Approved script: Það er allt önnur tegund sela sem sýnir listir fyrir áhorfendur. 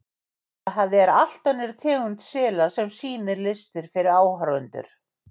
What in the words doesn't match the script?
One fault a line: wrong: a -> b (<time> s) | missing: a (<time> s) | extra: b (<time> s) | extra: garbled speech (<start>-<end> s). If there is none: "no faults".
no faults